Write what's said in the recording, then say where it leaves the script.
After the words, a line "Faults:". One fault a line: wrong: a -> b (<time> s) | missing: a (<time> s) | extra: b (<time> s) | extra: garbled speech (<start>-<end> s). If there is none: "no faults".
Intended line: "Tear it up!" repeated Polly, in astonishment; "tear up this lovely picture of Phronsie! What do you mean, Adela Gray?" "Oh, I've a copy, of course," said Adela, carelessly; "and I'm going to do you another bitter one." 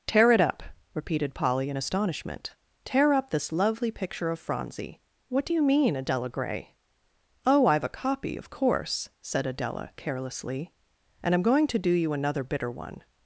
"Tear it up!" repeated Polly, in astonishment; "tear up this lovely picture of Phronsie! What do you mean, Adela Gray?" "Oh, I've a copy, of course," said Adela, carelessly; "and I'm going to do you another bitter one."
Faults:
no faults